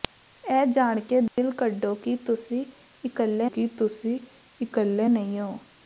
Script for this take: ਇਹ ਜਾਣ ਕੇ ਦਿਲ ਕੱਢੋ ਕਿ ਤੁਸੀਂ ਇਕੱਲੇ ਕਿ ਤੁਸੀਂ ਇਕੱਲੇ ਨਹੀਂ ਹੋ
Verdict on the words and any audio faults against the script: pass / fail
fail